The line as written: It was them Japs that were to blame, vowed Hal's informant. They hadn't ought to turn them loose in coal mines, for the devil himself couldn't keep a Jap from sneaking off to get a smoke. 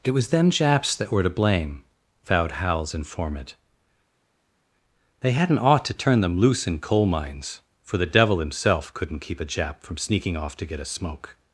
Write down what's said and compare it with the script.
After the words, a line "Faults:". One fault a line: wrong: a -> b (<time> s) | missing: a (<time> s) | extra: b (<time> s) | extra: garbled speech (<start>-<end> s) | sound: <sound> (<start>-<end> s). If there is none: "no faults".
It was them Japs that were to blame, vowed Hal's informant. They hadn't ought to turn them loose in coal mines, for the devil himself couldn't keep a Jap from sneaking off to get a smoke.
Faults:
no faults